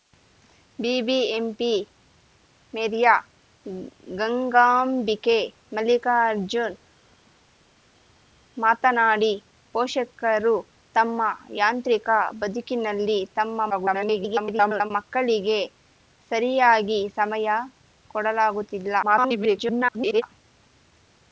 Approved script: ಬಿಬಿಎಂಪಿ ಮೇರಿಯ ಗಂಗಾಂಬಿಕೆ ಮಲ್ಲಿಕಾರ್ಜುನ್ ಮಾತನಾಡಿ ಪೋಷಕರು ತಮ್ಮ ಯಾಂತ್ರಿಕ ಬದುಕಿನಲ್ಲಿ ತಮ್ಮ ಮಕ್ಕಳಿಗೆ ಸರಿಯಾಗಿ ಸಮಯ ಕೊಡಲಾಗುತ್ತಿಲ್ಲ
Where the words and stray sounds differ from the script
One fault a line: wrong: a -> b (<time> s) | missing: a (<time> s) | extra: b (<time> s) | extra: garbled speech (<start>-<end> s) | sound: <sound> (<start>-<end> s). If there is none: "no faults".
extra: garbled speech (13.7-14.9 s)
extra: garbled speech (19.0-20.2 s)